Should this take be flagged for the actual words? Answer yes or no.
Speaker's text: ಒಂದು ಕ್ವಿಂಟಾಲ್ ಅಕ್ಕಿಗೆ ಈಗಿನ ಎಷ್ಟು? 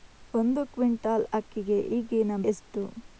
no